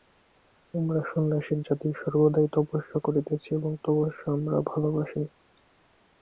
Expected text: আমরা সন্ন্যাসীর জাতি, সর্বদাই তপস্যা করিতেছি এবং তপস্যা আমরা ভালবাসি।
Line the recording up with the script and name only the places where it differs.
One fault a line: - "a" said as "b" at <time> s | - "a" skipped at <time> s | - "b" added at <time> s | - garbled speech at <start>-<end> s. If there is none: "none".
none